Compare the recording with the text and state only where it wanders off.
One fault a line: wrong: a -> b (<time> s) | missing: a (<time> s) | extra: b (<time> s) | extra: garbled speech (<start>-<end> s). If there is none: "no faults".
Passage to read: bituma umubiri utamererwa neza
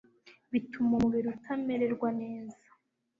no faults